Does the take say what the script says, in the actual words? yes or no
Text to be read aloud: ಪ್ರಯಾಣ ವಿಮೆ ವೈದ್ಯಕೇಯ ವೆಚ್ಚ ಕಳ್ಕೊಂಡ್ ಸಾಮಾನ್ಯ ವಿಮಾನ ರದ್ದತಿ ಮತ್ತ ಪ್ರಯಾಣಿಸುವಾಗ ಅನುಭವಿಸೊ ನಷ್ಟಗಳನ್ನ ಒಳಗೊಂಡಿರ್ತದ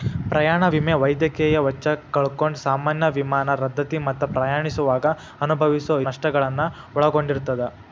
yes